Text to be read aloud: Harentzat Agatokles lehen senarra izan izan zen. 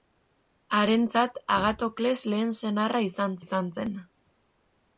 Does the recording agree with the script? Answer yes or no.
yes